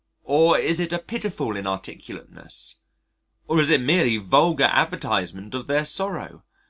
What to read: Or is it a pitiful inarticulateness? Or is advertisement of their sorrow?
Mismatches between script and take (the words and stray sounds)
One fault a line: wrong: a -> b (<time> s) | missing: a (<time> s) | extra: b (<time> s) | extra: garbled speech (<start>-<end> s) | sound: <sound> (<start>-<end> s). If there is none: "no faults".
extra: it merely vulgar (3.7 s)